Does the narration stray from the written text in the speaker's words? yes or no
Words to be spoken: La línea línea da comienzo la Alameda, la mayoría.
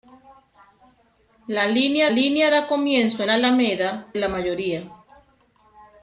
no